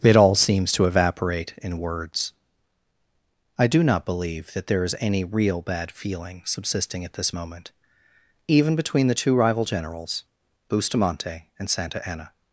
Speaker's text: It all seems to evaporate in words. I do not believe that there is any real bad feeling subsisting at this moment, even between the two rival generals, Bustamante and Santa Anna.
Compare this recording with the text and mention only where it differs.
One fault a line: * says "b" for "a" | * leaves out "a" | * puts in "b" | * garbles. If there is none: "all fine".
all fine